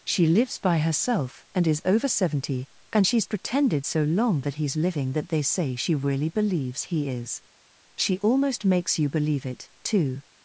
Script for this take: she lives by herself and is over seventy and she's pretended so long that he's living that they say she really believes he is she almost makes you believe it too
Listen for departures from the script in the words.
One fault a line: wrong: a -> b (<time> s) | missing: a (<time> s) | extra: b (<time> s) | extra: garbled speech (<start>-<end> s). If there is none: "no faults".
no faults